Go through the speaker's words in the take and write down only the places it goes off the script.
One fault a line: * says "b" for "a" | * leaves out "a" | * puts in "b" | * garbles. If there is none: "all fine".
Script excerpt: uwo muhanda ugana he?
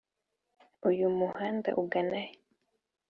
* says "uyu" for "uwo"